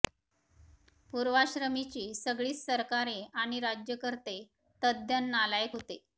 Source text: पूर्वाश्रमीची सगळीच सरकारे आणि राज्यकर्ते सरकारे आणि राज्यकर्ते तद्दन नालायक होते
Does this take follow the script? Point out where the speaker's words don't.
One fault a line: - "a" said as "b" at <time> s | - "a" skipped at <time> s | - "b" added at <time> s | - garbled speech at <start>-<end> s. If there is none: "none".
- "सरकारे आणि राज्यकर्ते" skipped at 4.4 s